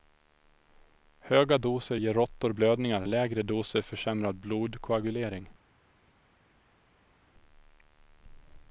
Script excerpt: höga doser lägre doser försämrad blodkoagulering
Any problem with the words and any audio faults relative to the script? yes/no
yes